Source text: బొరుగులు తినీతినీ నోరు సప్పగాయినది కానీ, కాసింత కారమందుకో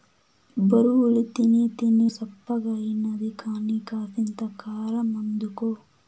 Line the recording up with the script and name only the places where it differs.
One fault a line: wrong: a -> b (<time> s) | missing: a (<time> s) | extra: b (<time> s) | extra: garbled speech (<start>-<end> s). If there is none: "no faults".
missing: నోరు (2.1 s)